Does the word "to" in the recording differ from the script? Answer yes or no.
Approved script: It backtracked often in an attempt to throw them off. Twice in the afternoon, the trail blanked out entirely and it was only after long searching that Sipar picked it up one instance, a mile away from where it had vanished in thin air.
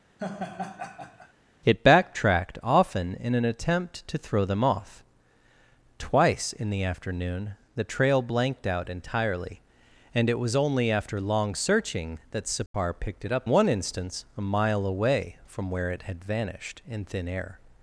no